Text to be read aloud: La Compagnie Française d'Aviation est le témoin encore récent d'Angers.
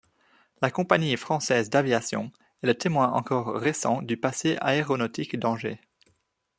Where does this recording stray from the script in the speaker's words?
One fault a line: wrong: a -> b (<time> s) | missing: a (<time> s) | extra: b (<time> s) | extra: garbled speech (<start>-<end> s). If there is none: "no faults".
extra: du passé aéronautique (4.0 s)